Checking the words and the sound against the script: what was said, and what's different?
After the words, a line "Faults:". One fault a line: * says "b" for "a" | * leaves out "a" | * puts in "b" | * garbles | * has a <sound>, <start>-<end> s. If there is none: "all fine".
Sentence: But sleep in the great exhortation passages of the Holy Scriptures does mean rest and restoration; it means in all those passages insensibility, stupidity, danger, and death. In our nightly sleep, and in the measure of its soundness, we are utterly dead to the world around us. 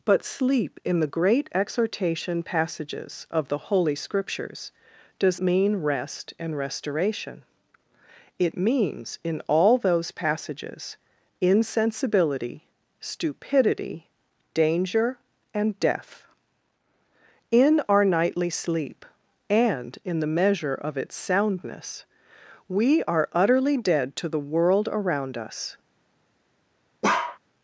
But sleep in the great exhortation passages of the Holy Scriptures does mean rest and restoration; it means in all those passages insensibility, stupidity, danger, and death. In our nightly sleep, and in the measure of its soundness, we are utterly dead to the world around us.
Faults:
* has a bark, 27.0-27.4 s